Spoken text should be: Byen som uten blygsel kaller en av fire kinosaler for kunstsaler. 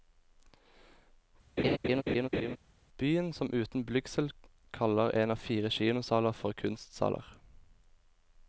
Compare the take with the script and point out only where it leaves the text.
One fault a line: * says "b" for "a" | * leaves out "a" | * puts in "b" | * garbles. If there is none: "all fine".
all fine